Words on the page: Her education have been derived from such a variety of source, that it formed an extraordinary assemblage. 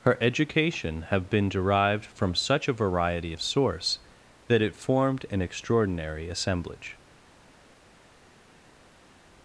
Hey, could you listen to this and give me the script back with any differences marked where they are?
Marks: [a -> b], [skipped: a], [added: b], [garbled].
Her education have been derived from such a variety of source, that it formed an extraordinary assemblage.